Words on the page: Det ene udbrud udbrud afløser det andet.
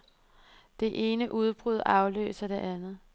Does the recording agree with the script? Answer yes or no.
no